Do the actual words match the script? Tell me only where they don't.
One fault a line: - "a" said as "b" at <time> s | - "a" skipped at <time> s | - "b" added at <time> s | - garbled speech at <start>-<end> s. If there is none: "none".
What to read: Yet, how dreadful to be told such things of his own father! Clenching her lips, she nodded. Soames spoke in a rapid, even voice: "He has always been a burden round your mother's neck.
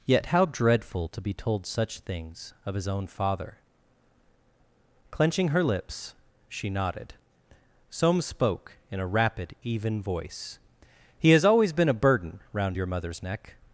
none